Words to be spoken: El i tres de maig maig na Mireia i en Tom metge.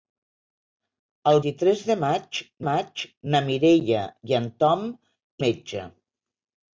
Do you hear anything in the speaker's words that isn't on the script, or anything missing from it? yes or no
no